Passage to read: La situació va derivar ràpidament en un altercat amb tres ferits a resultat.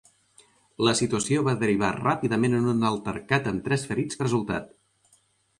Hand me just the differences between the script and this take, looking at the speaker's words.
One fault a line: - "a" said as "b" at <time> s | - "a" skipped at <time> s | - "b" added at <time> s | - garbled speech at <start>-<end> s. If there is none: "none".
none